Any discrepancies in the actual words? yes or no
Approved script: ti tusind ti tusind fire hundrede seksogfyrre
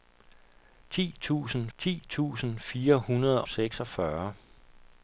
no